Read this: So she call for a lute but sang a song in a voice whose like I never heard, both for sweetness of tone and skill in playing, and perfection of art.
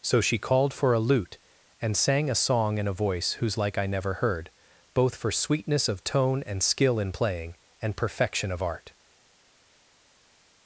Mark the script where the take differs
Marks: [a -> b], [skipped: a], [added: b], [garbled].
So she [call -> called] for a lute [but -> and] sang a song in a voice whose like I never heard, both for sweetness of tone and skill in playing, and perfection of art.